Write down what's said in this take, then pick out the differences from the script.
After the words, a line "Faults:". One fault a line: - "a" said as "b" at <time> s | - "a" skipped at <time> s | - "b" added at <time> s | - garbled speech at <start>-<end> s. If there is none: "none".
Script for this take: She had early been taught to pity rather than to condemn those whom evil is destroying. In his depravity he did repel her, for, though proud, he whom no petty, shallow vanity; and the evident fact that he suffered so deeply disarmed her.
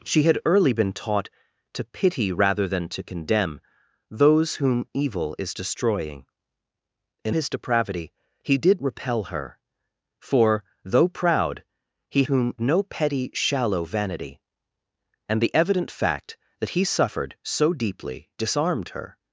She had early been taught to pity rather than to condemn those whom evil is destroying. In his depravity he did repel her, for, though proud, he whom no petty, shallow vanity; and the evident fact that he suffered so deeply disarmed her.
Faults:
none